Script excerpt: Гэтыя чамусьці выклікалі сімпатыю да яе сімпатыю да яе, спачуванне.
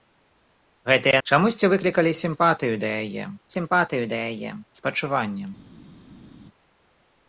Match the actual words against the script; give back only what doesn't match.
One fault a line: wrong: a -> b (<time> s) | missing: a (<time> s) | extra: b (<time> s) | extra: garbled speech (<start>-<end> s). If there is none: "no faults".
no faults